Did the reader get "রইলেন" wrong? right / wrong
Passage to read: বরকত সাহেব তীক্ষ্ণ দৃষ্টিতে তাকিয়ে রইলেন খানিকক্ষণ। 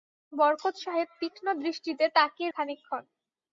wrong